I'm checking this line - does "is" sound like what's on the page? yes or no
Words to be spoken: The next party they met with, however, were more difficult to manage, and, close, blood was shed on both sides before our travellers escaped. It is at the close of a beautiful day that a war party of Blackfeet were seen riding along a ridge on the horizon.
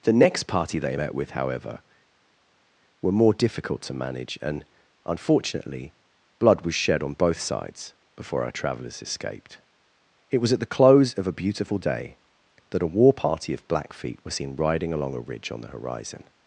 no